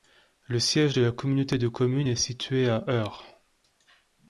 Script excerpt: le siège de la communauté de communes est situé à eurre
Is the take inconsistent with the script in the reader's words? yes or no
no